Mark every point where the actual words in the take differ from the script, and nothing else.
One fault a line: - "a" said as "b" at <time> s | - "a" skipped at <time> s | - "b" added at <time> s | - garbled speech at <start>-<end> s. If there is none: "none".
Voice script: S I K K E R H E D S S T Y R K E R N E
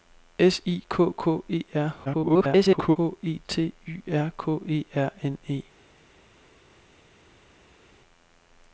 - garbled speech at 2.0-3.0 s
- "D S S" skipped at 3.4 s